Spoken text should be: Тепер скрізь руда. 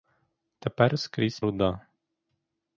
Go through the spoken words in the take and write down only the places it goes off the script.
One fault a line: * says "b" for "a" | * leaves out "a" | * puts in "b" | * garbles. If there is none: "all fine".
all fine